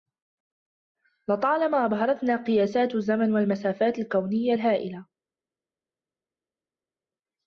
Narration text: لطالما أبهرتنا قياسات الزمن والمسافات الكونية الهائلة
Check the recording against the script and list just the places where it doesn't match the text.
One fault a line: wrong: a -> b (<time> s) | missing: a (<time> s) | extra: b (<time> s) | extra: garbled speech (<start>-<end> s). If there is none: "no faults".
no faults